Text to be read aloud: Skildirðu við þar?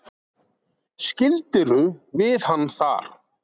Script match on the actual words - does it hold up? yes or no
no